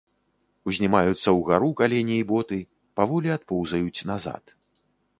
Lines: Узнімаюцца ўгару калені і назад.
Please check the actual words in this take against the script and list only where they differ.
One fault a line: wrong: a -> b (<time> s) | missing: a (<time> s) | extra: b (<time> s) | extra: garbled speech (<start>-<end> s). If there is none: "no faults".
extra: боты паволі адпоўзаюць (2.3 s)